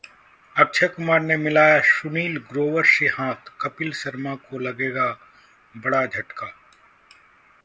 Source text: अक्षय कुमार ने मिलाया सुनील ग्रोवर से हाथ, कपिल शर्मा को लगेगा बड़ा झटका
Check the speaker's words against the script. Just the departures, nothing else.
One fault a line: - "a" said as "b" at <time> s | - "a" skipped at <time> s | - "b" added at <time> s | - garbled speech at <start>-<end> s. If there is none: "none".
none